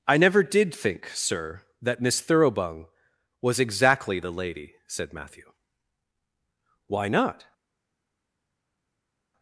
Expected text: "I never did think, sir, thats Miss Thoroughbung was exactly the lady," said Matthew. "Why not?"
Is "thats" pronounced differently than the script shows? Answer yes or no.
yes